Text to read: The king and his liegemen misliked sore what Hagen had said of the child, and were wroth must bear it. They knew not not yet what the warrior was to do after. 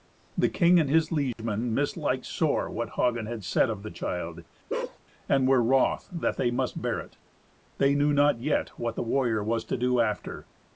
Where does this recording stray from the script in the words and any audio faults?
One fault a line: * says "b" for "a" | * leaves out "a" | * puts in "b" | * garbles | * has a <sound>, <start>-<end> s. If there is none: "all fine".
* has a dropout, 1.3-1.4 s
* has a bark, 4.7-5.0 s
* puts in "that they"
* leaves out "not"